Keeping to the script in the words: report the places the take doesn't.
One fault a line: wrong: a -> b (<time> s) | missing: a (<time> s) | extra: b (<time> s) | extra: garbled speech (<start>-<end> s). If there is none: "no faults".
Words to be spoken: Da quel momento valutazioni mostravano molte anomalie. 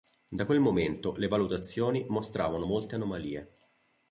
extra: le (1.2 s)